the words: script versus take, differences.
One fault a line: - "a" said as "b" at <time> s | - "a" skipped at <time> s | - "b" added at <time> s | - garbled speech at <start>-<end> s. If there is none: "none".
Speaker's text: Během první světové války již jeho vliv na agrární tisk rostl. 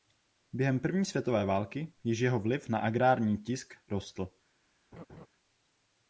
none